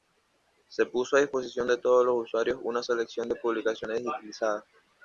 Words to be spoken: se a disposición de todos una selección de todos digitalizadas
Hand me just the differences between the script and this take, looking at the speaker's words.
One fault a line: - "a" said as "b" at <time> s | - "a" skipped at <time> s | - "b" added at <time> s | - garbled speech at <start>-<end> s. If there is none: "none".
- "puso" added at 0.9 s
- "los usuarios" added at 2.0 s
- "todos" said as "publicaciones" at 3.4 s